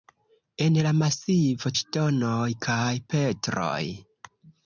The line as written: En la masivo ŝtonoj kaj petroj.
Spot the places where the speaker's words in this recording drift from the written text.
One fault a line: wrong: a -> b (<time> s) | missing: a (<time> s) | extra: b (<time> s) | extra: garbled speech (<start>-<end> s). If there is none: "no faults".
no faults